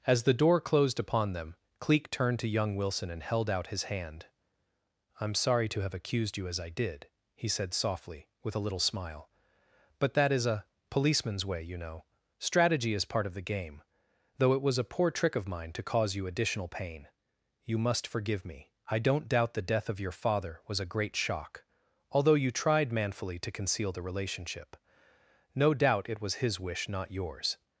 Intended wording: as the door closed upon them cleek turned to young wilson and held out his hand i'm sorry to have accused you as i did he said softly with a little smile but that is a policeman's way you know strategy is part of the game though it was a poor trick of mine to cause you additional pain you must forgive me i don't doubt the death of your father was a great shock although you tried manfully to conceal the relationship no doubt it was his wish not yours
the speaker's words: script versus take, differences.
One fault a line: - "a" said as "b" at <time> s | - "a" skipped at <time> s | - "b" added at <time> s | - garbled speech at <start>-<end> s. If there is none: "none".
none